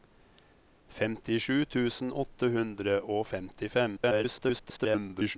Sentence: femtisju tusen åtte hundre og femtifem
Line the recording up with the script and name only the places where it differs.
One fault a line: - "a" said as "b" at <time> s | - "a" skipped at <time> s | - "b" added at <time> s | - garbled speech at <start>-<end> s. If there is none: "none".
- garbled speech at 4.0-5.4 s